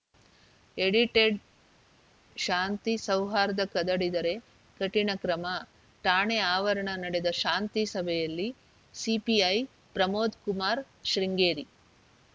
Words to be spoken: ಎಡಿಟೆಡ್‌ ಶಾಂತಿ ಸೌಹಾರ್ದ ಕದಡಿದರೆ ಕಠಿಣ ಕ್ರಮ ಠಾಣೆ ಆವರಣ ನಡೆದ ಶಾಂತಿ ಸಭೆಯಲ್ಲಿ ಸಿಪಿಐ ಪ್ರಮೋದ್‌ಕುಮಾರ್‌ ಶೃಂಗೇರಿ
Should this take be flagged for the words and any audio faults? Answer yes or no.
no